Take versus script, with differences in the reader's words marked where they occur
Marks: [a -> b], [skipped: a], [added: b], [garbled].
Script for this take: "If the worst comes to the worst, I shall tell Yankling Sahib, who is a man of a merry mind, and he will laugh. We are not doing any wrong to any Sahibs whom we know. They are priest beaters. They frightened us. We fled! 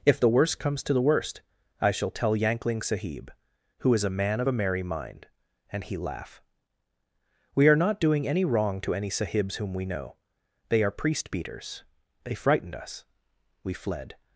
"If the worst comes to the worst, I shall tell Yankling Sahib, who is a man of a merry mind, and he [skipped: will] laugh. We are not doing any wrong to any Sahibs whom we know. They are priest beaters. They frightened us. We fled!